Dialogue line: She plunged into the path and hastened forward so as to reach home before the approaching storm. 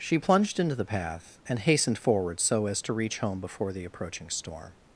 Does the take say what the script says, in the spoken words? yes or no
yes